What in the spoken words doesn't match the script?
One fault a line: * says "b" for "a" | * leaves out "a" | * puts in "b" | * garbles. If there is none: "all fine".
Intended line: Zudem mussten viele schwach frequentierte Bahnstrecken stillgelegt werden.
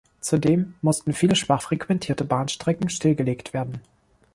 all fine